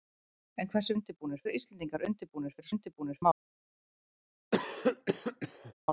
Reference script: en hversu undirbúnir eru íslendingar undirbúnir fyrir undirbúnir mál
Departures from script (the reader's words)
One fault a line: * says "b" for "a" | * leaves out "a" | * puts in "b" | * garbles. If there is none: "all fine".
all fine